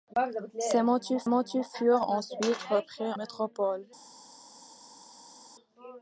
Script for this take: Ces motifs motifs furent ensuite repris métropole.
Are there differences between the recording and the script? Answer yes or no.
no